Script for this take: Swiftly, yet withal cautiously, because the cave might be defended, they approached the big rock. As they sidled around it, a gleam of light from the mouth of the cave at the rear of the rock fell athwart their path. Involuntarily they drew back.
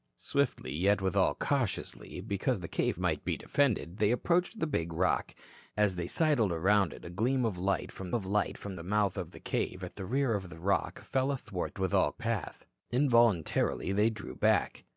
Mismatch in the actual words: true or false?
true